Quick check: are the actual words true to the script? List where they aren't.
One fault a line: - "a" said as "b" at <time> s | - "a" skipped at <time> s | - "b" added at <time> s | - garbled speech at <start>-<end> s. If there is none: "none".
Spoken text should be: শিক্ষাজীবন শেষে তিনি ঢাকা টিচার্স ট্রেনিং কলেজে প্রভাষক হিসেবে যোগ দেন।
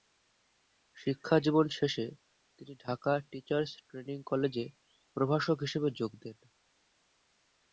none